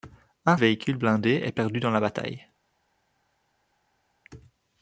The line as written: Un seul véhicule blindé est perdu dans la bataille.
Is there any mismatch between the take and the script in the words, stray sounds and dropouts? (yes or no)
yes